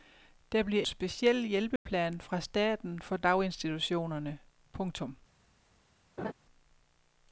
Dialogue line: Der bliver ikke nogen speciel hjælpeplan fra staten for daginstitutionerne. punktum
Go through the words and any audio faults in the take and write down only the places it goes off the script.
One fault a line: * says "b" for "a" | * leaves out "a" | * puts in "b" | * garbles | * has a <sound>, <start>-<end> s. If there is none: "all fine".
* leaves out "ikke nogen"
* has a dropout, 1.8-1.9 s
* has a laugh, 6.2-6.3 s